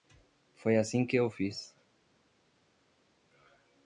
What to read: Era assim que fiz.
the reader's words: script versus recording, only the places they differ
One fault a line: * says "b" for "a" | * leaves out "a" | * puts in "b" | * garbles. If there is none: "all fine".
* says "Foi" for "Era"
* puts in "eu"